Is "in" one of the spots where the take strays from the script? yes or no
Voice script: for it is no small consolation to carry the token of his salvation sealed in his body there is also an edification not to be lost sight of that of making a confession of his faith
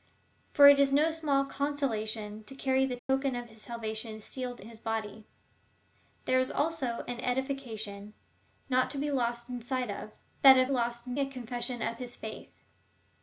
yes